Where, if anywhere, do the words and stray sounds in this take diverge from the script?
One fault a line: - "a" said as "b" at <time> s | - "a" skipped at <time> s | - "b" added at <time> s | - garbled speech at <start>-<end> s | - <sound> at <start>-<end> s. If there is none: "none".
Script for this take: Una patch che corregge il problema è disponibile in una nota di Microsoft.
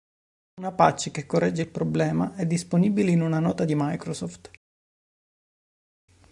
none